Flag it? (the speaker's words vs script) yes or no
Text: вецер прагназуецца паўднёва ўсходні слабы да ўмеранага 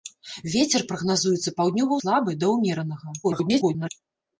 yes